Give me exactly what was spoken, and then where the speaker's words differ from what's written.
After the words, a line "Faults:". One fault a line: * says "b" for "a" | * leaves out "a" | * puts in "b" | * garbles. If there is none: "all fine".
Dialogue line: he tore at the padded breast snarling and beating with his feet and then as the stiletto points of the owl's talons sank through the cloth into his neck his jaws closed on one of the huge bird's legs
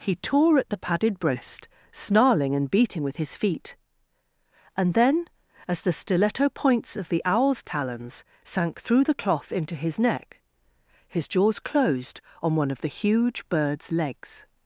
he tore at the padded breast snarling and beating with his feet and then as the stiletto points of the owl's talons sank through the cloth into his neck his jaws closed on one of the huge bird's legs
Faults:
all fine